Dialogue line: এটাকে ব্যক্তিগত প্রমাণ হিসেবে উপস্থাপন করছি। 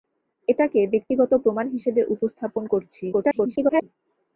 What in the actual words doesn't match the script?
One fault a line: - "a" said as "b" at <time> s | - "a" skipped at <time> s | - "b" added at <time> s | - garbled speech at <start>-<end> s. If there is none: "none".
- garbled speech at 3.1-3.8 s